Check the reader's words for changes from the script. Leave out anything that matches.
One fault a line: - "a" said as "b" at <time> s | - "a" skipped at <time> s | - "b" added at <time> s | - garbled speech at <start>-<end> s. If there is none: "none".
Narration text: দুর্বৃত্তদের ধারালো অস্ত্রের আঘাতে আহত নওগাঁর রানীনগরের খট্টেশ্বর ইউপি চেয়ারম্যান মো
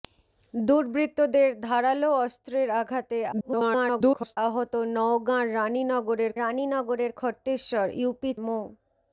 - garbled speech at 3.3-4.4 s
- "রানীনগরের" added at 6.4 s
- "চেয়ারম্যান" skipped at 8.3 s